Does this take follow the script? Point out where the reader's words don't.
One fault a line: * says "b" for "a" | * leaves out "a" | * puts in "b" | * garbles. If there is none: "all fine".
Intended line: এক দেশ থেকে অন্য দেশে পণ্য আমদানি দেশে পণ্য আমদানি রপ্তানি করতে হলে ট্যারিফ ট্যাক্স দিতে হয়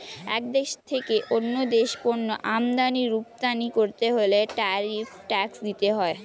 * leaves out "দেশে পণ্য আমদানি"